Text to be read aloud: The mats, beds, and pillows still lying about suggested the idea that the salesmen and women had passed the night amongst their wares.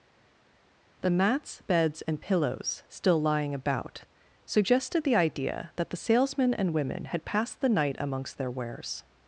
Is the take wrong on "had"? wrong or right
right